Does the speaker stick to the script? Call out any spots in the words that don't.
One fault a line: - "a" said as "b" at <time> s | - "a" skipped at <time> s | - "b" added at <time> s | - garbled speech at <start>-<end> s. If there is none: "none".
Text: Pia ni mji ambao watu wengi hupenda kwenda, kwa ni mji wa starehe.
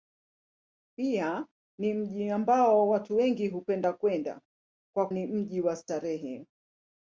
none